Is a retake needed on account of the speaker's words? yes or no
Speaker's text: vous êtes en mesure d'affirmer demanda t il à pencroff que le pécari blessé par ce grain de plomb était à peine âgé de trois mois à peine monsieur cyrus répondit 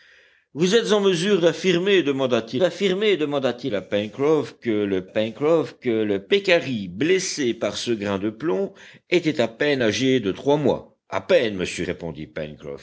yes